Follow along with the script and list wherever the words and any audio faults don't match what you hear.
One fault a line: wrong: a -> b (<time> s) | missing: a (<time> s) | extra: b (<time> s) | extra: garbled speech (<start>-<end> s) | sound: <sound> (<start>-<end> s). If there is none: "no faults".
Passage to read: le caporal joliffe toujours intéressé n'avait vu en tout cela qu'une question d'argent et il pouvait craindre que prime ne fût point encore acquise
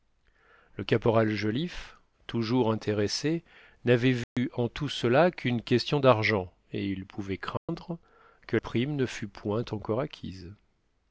sound: dropout (4.2-4.4 s)
sound: dropout (7.6-7.7 s)